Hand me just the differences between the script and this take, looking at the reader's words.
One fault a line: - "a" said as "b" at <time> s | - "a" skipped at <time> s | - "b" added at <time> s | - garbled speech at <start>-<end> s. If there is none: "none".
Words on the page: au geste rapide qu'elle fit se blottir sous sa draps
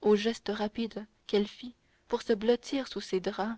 - "pour" added at 2.1 s
- "sa" said as "ses" at 3.0 s